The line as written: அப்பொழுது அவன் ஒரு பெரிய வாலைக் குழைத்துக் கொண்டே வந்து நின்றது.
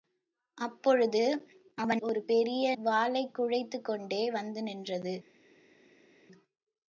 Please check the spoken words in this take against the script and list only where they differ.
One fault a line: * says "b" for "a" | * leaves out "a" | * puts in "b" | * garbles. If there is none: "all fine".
all fine